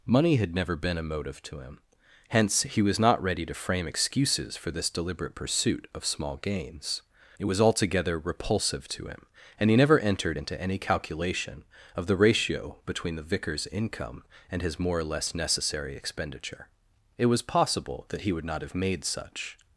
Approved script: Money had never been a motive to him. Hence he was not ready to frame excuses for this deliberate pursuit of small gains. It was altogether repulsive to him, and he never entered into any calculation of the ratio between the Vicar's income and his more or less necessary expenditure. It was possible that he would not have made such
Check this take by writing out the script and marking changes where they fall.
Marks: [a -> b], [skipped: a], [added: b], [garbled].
Money had never been a motive to him. Hence he was not ready to frame excuses for this deliberate pursuit of small gains. It was altogether repulsive to him, and he never entered into any calculation of the ratio between the Vicar's income and his more or less necessary expenditure. It was possible that he would not have made such